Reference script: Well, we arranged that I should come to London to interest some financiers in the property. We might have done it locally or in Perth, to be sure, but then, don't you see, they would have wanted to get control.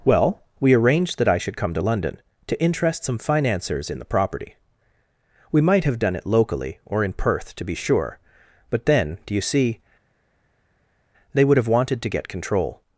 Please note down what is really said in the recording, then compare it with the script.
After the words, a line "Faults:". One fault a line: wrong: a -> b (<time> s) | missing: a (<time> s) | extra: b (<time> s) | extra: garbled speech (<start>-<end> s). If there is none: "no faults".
Well, we arranged that I should come to London to interest some financiers in the property. We might have done it locally or in Perth, to be sure, but then, do you see, they would have wanted to get control.
Faults:
wrong: don't -> do (9.3 s)